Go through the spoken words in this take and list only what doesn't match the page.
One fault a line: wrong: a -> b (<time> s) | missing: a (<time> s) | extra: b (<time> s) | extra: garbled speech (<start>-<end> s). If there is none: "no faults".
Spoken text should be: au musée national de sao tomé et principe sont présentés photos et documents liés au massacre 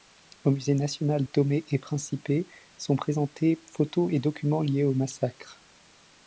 missing: de sao (1.2 s)